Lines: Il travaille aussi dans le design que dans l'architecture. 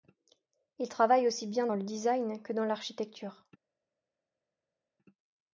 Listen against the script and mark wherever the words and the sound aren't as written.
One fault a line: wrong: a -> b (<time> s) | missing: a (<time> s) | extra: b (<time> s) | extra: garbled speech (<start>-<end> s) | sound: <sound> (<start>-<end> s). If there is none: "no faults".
extra: bien (1.4 s)